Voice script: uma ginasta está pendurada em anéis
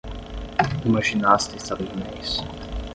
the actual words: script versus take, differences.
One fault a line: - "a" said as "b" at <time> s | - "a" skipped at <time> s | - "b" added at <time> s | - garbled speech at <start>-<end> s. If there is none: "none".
- "pendurada" skipped at 1.8 s